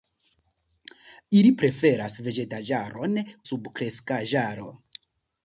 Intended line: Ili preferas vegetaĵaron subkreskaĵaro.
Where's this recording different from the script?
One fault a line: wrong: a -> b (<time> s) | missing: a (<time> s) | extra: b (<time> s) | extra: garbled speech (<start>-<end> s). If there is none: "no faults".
no faults